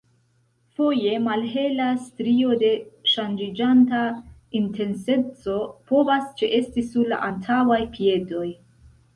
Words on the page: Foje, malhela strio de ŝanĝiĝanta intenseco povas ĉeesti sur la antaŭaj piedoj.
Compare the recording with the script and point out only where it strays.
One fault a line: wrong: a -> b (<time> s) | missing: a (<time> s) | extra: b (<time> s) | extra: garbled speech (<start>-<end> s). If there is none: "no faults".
no faults